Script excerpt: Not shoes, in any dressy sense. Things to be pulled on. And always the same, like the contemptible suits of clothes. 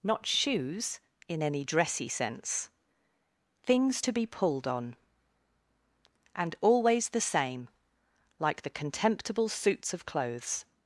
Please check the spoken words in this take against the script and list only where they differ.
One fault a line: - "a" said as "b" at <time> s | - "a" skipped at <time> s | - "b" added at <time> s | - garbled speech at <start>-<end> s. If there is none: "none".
none